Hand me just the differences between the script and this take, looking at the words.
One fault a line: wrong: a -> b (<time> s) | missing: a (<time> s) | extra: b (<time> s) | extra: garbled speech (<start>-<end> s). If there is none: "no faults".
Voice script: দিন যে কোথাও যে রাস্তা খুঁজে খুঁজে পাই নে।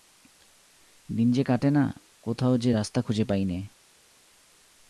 extra: কাটে না (1.4 s)
missing: খুঁজে (3.2 s)